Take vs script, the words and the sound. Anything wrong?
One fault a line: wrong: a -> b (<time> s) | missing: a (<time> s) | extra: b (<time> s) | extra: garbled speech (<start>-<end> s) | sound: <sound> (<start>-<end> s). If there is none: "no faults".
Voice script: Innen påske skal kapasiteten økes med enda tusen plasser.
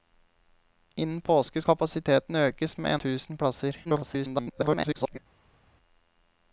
missing: skal (1.6 s)
missing: enda (2.9 s)
extra: garbled speech (3.8-5.2 s)